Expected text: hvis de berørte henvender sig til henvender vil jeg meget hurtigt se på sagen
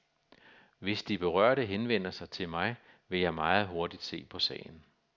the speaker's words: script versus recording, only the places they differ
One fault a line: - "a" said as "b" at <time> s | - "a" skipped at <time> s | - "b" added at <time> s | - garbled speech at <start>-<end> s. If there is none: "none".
- "henvender" said as "mig" at 2.5 s